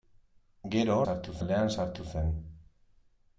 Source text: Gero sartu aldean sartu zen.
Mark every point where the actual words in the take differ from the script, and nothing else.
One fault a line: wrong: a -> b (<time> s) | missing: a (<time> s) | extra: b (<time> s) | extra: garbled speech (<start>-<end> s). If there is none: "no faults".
no faults